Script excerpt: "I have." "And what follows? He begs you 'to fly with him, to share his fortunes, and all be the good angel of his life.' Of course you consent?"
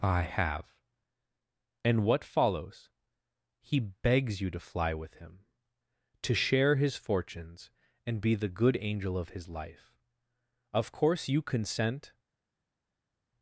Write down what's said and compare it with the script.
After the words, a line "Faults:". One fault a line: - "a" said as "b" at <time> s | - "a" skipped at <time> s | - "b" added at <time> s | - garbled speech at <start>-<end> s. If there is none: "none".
"I have." "And what follows? He begs you 'to fly with him, to share his fortunes, and be the good angel of his life.' Of course you consent?"
Faults:
- "all" skipped at 8.2 s